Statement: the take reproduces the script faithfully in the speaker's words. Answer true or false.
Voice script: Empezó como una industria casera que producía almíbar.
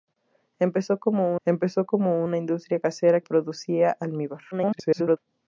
false